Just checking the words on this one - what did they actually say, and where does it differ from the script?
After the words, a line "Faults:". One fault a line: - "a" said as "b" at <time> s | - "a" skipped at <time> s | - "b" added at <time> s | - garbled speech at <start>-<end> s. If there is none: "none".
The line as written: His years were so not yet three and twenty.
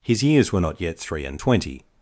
His years were not yet three and twenty.
Faults:
- "so" skipped at 0.6 s